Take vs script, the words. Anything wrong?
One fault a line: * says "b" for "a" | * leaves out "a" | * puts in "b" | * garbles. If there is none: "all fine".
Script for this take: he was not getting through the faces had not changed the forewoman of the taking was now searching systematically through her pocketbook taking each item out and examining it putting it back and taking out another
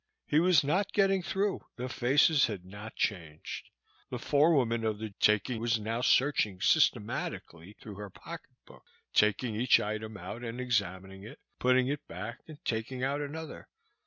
all fine